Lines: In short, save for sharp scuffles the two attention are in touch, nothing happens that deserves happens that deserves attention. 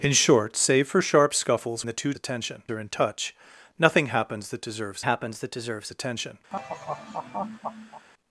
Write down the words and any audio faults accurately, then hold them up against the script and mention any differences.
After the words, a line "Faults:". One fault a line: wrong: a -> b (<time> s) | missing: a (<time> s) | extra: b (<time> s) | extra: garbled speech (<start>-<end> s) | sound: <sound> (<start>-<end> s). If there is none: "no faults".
In short, save for sharp scuffles the two attention are in touch, nothing happens that deserves happens that deserves attention.
Faults:
sound: laugh (6.5-8.1 s)